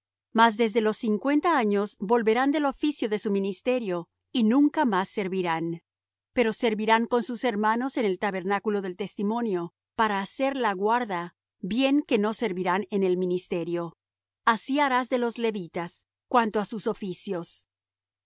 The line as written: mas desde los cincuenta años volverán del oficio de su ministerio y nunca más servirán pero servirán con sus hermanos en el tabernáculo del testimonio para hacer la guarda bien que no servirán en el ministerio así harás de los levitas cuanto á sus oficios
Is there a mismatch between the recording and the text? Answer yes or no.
no